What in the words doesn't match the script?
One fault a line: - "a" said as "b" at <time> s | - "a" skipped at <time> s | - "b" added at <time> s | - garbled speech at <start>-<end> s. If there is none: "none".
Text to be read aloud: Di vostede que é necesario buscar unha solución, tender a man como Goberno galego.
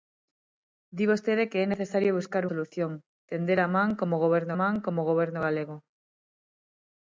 - "unha" skipped at 2.4 s
- "man como Goberno" added at 4.6 s